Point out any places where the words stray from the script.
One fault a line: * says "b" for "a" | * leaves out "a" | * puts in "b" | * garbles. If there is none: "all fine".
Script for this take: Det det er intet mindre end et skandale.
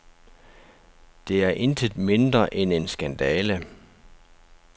* leaves out "det"
* says "en" for "et"